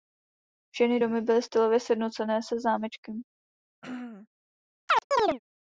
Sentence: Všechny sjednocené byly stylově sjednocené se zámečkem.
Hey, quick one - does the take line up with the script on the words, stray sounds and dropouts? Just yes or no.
no